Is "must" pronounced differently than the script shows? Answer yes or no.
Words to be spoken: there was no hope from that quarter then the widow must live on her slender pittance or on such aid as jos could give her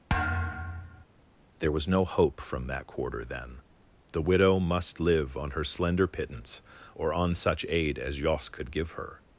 no